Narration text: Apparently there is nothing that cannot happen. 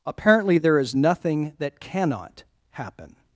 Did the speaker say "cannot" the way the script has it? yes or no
yes